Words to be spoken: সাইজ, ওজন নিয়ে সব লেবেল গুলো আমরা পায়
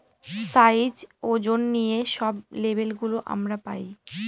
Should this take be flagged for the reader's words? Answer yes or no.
no